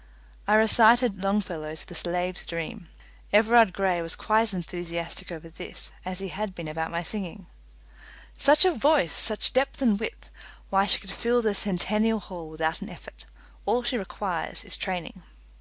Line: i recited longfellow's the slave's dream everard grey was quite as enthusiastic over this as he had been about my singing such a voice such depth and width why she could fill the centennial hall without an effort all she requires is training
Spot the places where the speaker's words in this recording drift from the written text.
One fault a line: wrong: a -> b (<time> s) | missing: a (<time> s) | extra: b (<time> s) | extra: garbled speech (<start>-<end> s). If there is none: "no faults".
no faults